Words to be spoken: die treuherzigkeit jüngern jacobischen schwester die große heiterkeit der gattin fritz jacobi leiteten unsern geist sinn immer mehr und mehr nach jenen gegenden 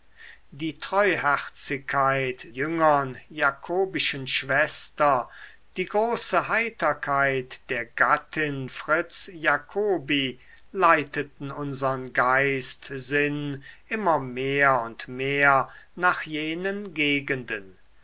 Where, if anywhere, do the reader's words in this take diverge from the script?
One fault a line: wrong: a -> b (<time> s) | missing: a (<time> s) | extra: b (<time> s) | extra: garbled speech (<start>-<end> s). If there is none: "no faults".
no faults